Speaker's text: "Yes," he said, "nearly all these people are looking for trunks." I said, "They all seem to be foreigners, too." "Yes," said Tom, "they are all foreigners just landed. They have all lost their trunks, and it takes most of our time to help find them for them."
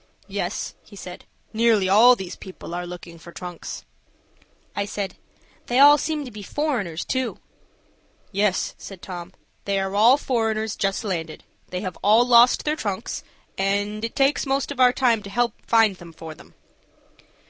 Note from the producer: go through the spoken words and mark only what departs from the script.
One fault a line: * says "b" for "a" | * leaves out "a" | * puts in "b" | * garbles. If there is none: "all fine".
all fine